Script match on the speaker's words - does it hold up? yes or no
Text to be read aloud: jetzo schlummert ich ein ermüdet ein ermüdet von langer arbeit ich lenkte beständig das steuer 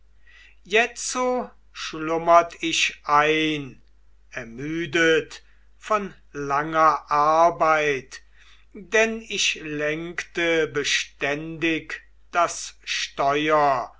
no